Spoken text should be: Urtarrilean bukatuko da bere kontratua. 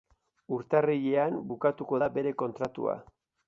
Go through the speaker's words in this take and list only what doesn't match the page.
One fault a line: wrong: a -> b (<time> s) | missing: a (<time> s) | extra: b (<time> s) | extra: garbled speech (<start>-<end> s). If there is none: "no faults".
no faults